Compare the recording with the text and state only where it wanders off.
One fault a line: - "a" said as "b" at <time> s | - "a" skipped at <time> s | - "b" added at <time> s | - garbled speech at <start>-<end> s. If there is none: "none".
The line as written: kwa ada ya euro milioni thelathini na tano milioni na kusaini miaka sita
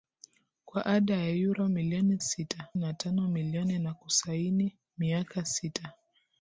- "thelathini" said as "sita" at 2.2 s